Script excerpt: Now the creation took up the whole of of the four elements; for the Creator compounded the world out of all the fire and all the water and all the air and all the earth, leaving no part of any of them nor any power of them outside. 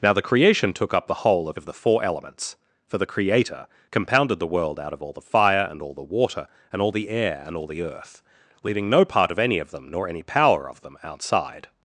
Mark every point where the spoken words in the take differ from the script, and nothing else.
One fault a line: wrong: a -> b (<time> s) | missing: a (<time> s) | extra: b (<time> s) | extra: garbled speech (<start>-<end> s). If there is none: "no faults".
no faults